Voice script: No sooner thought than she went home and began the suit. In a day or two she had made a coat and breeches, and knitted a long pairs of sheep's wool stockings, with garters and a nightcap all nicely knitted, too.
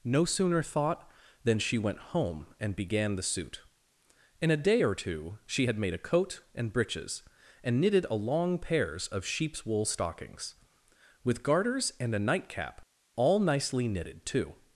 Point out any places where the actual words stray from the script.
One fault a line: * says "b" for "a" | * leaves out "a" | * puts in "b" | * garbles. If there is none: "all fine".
all fine